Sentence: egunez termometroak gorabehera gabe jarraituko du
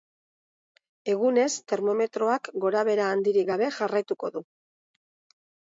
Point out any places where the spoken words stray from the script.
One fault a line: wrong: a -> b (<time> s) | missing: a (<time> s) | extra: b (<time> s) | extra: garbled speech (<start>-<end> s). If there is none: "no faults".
extra: handirik (3.1 s)